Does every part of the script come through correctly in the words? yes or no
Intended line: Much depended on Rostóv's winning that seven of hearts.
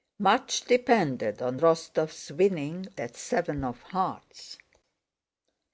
yes